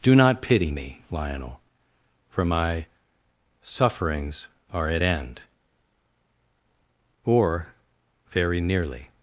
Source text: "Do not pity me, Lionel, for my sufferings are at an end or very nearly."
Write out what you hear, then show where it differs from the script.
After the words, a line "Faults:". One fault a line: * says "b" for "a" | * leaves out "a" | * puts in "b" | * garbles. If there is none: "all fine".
"Do not pity me, Lionel, for my sufferings are at end or very nearly."
Faults:
* leaves out "an"